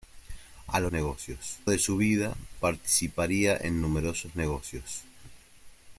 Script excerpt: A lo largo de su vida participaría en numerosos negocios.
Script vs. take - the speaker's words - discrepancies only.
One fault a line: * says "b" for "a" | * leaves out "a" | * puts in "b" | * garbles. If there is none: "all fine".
* says "negocios" for "largo"